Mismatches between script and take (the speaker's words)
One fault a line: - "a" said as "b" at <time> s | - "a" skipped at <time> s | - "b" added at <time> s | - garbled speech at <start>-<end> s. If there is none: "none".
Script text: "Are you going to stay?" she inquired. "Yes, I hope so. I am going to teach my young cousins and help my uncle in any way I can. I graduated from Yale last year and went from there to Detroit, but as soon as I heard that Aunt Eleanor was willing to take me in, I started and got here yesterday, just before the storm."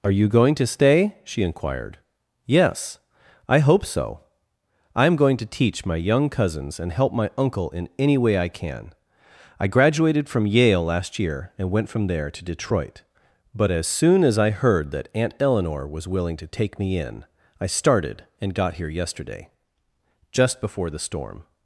none